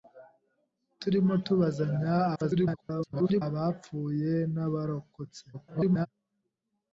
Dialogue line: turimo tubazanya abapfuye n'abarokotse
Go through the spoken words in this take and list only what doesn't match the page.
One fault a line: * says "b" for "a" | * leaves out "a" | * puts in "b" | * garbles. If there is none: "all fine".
* garbles
* garbles